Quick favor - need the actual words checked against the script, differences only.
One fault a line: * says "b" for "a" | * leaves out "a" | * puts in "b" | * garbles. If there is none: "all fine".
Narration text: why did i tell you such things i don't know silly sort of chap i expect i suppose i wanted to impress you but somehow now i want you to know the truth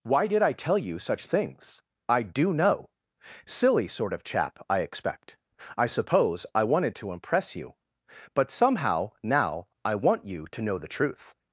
* says "do" for "don't"